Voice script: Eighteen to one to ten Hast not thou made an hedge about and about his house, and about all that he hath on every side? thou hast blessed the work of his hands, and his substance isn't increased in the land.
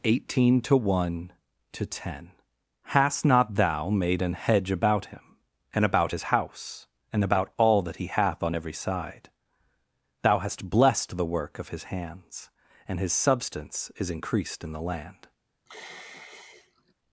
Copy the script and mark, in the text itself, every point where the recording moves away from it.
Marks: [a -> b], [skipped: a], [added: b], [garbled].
Eighteen to one to ten Hast not thou made an hedge about [added: him] and about his house, and about all that he hath on every side? thou hast blessed the work of his hands, and his substance [isn't -> is] increased in the land.